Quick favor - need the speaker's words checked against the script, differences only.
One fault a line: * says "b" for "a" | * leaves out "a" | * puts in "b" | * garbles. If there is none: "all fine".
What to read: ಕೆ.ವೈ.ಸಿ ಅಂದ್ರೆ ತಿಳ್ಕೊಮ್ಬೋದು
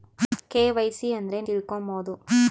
all fine